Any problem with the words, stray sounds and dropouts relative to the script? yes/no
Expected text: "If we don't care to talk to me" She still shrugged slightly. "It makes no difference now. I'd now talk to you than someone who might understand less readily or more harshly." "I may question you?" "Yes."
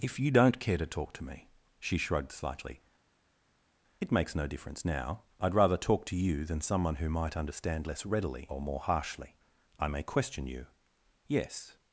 yes